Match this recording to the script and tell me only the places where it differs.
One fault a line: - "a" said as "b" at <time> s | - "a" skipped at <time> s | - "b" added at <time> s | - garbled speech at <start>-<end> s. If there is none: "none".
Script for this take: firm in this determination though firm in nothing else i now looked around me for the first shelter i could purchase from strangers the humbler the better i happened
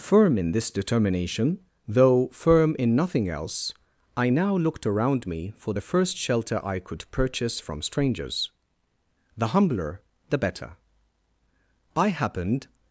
none